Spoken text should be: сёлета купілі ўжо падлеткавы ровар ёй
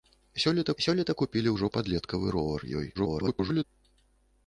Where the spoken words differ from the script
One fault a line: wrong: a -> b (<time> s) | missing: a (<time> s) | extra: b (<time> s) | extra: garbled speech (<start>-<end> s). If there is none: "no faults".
extra: сёлета (0.8 s)
extra: garbled speech (2.9-3.6 s)